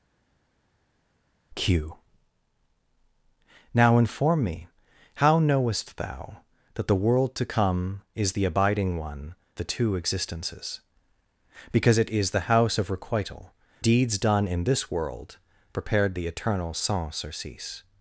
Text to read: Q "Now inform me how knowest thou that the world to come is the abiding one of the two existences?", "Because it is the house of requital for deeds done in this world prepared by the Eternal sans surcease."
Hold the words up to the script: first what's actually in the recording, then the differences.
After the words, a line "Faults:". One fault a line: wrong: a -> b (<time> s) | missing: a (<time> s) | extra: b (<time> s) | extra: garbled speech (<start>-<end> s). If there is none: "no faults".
Q "Now inform me how knowest thou that the world to come is the abiding one the two existences?", "Because it is the house of requital deeds done in this world prepared the Eternal sans surcease."
Faults:
missing: of (9.3 s)
missing: for (13.5 s)
missing: by (16.1 s)